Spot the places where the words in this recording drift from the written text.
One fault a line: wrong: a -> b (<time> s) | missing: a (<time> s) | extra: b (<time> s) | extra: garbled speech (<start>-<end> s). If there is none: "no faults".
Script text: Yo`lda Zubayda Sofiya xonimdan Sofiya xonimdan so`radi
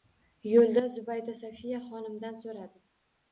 missing: Sofiya xonimdan (2.4 s)